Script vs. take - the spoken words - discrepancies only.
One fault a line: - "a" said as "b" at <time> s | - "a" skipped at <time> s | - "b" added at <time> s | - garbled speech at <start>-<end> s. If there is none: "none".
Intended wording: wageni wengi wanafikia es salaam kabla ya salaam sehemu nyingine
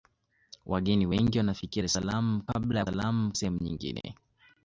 none